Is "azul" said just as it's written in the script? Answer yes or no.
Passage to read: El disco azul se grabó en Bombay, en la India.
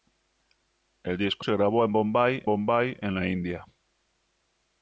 no